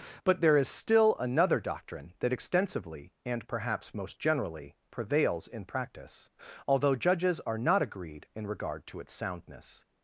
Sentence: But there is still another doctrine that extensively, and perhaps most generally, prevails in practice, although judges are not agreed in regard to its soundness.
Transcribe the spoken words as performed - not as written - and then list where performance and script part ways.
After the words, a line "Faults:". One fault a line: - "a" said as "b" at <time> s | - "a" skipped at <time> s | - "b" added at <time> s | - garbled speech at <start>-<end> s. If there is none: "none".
But there is still another doctrine that extensively, and perhaps most generally, prevails in practice, although judges are not agreed in regard to its soundness.
Faults:
none